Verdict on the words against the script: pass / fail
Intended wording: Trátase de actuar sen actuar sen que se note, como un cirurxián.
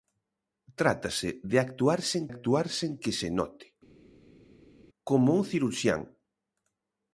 pass